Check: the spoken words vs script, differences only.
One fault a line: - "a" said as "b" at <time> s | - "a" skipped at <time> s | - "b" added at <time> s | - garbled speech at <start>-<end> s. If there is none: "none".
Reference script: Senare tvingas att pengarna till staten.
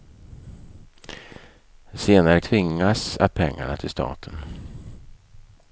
none